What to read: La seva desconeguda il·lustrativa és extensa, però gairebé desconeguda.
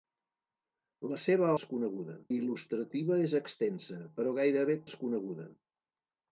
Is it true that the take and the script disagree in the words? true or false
false